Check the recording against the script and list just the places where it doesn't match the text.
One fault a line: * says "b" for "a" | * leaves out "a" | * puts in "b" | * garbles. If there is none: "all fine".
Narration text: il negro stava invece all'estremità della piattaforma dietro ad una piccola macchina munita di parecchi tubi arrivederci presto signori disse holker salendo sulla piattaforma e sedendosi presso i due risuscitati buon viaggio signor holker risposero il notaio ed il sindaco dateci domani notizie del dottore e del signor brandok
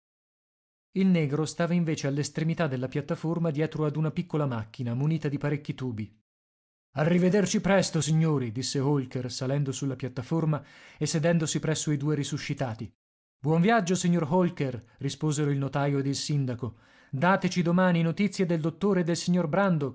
all fine